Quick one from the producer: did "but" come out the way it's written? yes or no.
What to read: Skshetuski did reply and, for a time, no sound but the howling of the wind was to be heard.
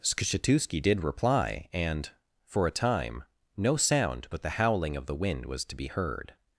yes